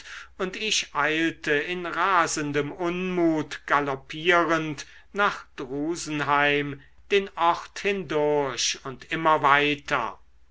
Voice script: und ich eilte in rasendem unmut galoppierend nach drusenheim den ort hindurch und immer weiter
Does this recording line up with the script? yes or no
yes